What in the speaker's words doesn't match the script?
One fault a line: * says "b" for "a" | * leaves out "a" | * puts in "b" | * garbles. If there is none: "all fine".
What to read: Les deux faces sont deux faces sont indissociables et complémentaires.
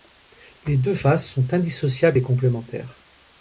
* leaves out "deux faces sont"